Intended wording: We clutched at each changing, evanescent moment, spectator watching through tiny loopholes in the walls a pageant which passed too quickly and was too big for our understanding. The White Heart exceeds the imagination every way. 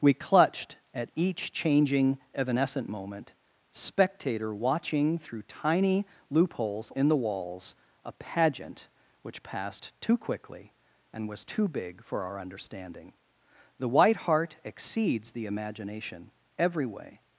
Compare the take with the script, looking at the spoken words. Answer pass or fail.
pass